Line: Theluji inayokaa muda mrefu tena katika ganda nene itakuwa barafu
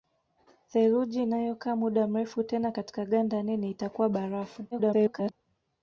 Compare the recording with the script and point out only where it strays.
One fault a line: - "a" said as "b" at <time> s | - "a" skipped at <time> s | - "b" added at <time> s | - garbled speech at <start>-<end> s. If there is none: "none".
- garbled speech at 4.7-5.3 s